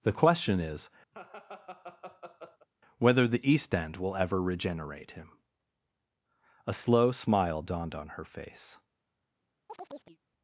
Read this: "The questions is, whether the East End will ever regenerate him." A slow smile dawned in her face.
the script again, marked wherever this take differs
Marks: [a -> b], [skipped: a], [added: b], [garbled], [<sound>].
"The [questions -> question] is, [laugh] whether the East End will ever regenerate him." A slow smile dawned [in -> on] her face. [chirp]